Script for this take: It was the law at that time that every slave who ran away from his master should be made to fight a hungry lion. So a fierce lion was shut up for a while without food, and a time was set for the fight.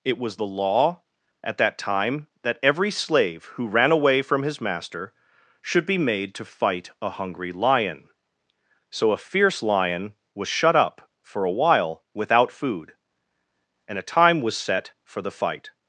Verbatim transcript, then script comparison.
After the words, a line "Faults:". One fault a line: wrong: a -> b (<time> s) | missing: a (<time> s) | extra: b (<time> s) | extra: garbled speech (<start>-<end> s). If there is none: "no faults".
It was the law at that time that every slave who ran away from his master should be made to fight a hungry lion. So a fierce lion was shut up for a while without food, and a time was set for the fight.
Faults:
no faults